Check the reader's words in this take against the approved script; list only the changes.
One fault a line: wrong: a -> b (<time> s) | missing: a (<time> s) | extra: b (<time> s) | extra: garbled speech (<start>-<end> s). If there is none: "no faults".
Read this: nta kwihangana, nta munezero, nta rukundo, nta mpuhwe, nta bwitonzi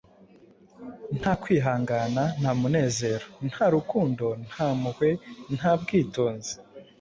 no faults